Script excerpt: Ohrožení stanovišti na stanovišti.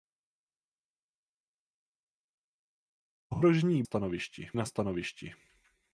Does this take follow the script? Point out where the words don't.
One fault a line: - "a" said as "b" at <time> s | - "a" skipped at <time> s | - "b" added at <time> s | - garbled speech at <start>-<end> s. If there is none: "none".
none